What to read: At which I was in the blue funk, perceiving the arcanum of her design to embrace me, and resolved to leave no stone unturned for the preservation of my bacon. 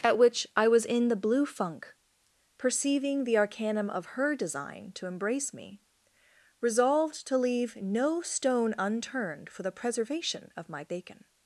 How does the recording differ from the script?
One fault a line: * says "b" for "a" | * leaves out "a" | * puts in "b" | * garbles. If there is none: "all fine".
* leaves out "and"